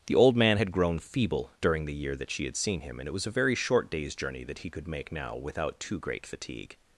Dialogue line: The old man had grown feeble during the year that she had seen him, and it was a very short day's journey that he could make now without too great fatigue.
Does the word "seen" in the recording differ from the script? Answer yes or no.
no